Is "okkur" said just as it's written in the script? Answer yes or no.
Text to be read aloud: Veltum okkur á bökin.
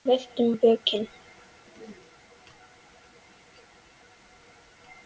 no